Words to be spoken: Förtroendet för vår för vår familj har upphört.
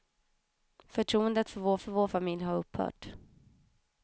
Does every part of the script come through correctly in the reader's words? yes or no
yes